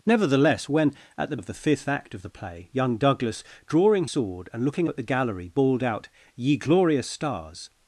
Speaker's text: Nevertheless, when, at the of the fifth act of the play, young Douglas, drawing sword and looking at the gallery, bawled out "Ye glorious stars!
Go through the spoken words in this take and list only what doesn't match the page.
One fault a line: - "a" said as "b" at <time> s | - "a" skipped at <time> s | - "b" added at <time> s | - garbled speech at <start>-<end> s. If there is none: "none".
none